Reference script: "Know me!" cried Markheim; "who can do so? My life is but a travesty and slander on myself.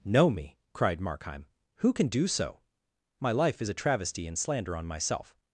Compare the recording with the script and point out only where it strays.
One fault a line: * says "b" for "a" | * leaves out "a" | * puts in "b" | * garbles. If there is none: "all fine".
* leaves out "but"